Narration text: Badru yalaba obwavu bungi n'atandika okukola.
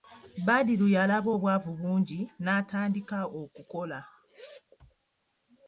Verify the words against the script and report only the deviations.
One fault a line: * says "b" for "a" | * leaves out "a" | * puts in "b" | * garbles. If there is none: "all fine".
all fine